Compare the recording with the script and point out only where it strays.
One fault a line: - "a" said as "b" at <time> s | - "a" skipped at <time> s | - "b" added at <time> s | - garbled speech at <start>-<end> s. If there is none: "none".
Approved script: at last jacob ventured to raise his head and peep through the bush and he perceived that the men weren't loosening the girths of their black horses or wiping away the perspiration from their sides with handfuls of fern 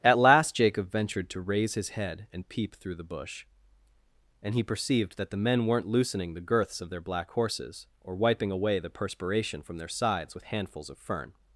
none